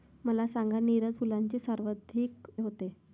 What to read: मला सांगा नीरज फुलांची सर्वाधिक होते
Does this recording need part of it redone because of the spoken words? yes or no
no